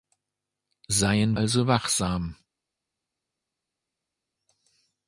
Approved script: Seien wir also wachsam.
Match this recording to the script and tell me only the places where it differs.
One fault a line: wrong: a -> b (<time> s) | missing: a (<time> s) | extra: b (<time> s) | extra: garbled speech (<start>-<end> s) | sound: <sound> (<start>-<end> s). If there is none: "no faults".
missing: wir (1.4 s)